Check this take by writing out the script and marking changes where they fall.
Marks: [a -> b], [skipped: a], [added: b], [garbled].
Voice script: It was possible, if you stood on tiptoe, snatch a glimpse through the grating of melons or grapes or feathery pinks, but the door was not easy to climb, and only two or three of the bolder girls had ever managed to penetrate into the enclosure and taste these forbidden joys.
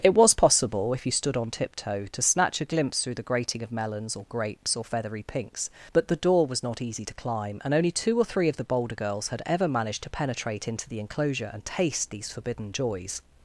It was possible, if you stood on tiptoe, [added: to] snatch a glimpse through the grating of melons or grapes or feathery pinks, but the door was not easy to climb, and only two or three of the bolder girls had ever managed to penetrate into the enclosure and taste these forbidden joys.